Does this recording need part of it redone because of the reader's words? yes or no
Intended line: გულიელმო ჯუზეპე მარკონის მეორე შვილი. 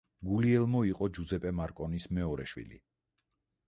yes